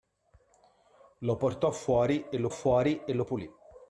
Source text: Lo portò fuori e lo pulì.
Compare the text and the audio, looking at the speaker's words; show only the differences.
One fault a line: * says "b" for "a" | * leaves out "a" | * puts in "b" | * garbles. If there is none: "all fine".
* puts in "fuori e lo"